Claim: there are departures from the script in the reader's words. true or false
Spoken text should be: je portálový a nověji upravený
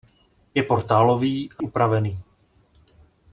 true